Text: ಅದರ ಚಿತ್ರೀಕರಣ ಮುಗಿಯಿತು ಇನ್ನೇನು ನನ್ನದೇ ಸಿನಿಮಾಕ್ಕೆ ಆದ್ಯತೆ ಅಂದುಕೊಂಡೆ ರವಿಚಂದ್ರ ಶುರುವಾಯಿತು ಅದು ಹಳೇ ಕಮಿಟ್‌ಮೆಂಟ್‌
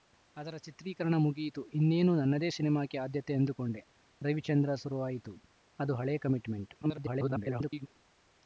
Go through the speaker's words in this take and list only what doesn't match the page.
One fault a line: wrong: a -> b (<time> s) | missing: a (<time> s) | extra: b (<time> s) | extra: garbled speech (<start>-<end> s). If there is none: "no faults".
extra: garbled speech (6.8-7.9 s)